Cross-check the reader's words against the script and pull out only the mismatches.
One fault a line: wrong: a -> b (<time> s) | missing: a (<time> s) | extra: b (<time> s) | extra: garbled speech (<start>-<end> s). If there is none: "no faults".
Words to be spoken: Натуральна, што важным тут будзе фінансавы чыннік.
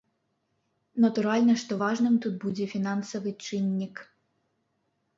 no faults